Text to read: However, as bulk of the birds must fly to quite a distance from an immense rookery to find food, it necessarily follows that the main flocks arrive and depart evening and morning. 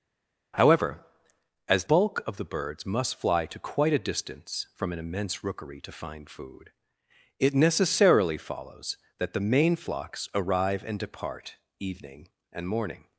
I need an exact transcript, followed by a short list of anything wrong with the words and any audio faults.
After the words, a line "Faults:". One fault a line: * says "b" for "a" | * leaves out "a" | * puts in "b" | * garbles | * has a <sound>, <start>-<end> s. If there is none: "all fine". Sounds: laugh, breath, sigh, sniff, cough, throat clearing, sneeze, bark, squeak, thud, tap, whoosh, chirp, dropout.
However, as bulk of the birds must fly to quite a distance from an immense rookery to find food, it necessarily follows that the main flocks arrive and depart evening and morning.
Faults:
all fine